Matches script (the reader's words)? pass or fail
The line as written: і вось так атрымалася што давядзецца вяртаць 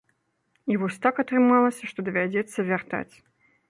pass